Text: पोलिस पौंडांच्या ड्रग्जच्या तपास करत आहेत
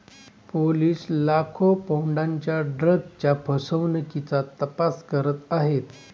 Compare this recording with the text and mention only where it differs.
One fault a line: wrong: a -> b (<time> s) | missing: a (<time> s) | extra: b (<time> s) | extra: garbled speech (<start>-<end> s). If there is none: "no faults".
extra: लाखो (1.1 s)
extra: फसवणुकीचा (3.5 s)